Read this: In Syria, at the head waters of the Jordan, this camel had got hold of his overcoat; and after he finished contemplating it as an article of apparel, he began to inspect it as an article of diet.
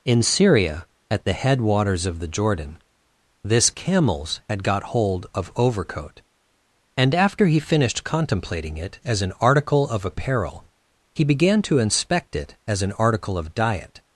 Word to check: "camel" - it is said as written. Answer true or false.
false